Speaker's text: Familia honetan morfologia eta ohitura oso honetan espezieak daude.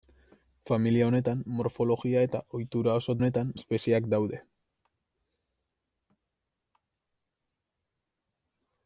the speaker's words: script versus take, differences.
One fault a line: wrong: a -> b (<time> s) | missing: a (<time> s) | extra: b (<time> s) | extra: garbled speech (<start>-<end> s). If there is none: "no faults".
no faults